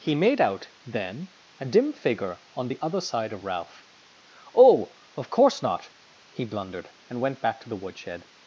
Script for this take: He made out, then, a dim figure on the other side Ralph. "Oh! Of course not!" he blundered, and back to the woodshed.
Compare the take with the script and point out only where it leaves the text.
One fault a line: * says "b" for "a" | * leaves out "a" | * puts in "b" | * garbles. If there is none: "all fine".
* puts in "of"
* puts in "went"